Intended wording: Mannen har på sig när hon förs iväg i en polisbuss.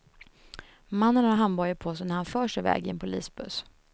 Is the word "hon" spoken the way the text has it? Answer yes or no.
no